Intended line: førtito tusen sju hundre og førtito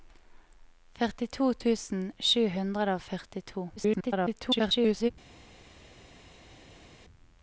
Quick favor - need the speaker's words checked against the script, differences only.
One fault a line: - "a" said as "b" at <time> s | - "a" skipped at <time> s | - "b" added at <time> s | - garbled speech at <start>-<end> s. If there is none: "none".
- garbled speech at 3.8-5.1 s